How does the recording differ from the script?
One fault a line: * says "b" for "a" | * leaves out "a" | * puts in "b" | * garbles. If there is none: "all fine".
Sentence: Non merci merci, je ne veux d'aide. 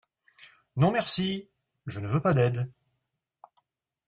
* leaves out "merci"
* puts in "pas"